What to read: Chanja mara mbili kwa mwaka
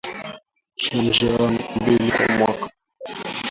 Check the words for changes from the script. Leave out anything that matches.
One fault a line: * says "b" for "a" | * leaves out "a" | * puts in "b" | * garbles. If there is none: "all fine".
* leaves out "mara"